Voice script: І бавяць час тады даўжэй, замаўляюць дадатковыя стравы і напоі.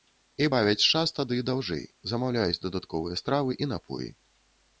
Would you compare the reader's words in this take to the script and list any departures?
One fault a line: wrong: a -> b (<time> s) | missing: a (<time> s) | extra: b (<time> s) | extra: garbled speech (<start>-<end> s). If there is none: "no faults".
no faults